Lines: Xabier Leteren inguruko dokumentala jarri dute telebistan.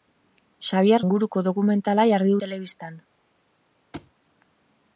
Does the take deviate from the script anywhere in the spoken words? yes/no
yes